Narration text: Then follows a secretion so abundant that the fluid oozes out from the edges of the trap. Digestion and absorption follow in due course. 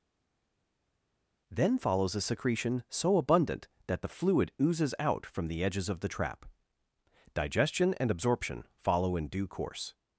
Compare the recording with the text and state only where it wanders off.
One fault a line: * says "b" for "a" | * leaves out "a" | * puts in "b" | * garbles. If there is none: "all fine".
all fine